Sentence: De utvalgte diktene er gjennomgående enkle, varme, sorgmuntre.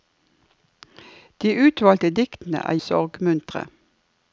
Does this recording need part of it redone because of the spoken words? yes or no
yes